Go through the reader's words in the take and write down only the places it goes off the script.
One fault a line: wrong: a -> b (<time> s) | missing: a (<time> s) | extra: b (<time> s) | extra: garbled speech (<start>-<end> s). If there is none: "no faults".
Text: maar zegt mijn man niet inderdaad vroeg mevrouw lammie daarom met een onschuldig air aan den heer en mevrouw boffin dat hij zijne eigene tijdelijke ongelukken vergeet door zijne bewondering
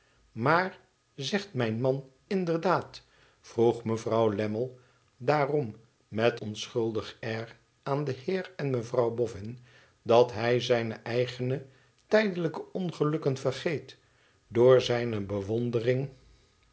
missing: niet (2.1 s)
missing: een (6.4 s)